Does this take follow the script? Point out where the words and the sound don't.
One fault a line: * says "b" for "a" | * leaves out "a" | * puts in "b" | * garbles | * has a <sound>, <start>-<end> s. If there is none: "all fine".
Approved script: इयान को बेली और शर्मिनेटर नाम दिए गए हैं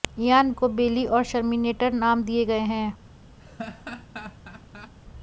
* has a laugh, 3.4-4.9 s